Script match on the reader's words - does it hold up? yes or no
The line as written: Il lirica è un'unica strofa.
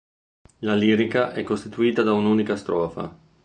no